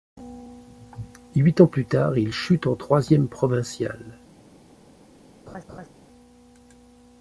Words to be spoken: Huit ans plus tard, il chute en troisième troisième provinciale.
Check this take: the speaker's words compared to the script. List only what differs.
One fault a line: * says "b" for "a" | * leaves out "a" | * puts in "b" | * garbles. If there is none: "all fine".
* leaves out "troisième"